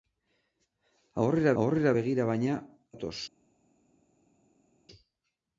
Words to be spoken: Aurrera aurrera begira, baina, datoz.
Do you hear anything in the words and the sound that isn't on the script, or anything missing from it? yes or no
no